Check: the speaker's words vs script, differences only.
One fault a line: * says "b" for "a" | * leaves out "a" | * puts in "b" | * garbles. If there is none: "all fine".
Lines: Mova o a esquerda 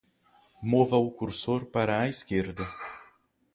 * puts in "cursor para"